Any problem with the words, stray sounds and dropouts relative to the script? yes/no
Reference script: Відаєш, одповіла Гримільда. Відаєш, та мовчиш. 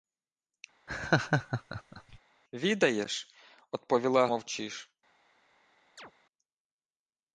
yes